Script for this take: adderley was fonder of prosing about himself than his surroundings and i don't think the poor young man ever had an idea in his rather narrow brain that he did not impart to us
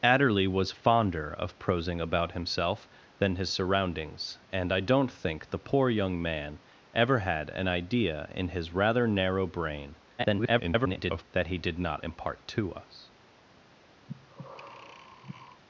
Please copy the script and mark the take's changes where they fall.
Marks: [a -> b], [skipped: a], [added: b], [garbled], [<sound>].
adderley was fonder of prosing about himself than his surroundings and i don't think the poor young man ever had an idea in his rather narrow brain [garbled] that he did not impart to us [breath]